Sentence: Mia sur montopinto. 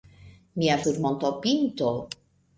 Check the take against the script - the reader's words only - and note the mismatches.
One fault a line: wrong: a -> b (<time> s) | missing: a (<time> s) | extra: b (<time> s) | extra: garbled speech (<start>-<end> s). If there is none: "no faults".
no faults